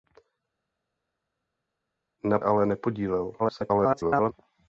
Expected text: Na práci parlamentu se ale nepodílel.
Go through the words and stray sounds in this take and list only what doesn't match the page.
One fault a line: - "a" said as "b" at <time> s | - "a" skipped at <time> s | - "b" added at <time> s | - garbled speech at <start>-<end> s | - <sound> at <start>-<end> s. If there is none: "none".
- "práci parlamentu se" skipped at 2.4 s
- garbled speech at 3.4-4.3 s